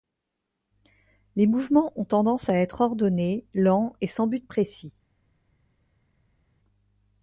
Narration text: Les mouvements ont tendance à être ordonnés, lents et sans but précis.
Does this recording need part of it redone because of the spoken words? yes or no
no